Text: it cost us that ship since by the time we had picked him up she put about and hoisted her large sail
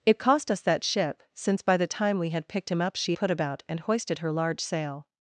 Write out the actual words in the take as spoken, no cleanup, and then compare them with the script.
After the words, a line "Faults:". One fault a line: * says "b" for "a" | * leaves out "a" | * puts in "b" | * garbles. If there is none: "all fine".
it cost us that ship since by the time we had picked him up she put about and hoisted her large sail
Faults:
all fine